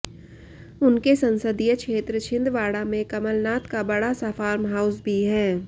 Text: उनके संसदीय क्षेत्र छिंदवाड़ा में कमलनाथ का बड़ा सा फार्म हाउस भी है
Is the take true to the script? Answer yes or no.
yes